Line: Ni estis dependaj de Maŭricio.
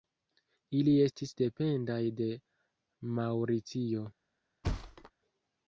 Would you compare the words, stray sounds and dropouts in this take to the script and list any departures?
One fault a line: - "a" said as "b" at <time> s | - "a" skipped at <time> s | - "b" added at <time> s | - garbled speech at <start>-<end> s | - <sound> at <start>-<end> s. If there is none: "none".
- "Ni" said as "Ili" at 0.8 s
- thud at 4.6-5.1 s